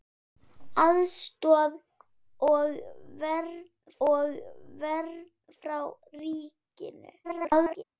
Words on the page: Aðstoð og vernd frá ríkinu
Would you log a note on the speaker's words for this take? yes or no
yes